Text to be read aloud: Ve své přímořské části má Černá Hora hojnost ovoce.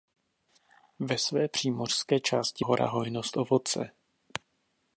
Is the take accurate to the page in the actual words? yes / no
no